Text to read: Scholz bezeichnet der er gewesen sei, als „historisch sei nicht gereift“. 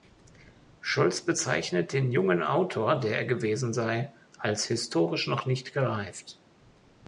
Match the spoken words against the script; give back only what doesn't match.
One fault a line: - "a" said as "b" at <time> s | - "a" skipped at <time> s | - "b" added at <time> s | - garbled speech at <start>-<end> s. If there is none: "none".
- "den jungen Autor" added at 1.9 s
- "sei" said as "noch" at 5.3 s